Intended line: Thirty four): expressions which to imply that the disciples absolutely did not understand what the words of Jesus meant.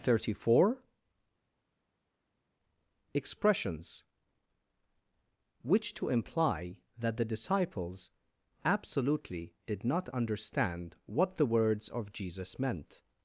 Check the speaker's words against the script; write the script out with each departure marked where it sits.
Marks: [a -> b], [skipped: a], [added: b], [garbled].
Thirty four): expressions which to imply that the disciples absolutely did not understand what the words of Jesus meant.